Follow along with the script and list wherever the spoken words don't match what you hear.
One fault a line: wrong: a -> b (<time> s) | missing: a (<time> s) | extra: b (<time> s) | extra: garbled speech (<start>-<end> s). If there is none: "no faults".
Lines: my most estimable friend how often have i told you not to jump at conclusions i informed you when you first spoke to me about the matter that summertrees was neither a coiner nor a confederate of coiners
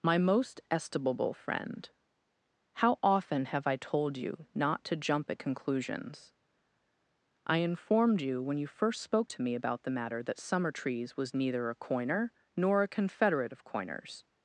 no faults